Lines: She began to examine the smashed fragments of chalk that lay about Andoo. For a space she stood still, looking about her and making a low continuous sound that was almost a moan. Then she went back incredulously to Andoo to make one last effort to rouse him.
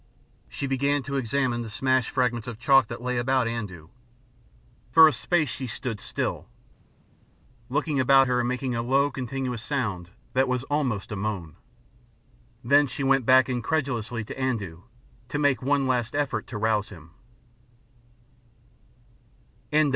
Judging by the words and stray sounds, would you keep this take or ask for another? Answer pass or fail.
pass